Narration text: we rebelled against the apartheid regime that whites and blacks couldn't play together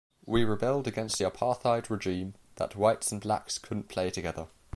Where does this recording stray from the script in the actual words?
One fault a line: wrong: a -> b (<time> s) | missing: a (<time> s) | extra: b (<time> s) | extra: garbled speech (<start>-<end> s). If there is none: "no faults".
no faults